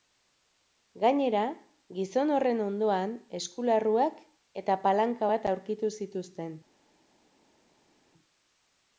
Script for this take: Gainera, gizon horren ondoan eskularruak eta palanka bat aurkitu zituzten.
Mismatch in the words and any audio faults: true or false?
false